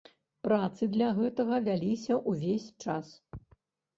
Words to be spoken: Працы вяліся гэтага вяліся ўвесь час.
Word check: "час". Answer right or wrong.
right